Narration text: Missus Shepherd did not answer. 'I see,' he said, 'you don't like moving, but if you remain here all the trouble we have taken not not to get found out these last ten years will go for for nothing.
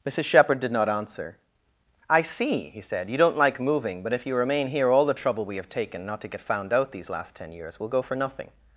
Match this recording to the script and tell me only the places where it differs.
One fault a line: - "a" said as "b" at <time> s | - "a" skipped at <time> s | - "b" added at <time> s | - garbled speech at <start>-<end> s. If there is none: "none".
- "not" skipped at 6.2 s
- "for" skipped at 8.2 s